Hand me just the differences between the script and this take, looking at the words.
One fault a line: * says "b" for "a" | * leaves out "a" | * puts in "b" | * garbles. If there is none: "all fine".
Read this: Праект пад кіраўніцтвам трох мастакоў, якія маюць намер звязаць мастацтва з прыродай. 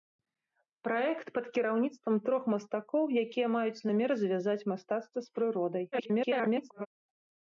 * garbles